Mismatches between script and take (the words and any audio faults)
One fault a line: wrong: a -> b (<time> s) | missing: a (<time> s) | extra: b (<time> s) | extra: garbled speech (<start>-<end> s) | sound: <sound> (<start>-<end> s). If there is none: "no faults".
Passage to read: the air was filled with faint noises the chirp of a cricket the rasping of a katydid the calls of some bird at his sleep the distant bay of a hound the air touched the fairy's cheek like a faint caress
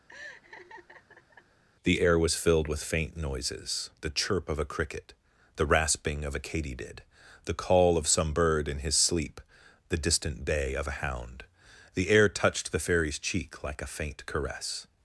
sound: laugh (0.1-1.6 s)
wrong: calls -> call (7.5 s)
wrong: at -> in (8.7 s)